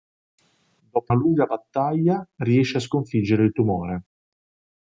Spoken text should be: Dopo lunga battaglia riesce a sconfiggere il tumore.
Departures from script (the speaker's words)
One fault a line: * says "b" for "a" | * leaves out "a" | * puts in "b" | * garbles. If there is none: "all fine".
all fine